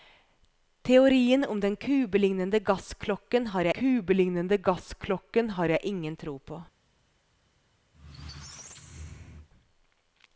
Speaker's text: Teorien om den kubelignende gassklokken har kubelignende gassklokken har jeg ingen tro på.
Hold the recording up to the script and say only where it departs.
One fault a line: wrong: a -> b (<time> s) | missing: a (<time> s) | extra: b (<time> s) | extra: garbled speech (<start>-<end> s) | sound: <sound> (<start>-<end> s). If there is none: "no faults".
sound: squeak (7.9-9.5 s)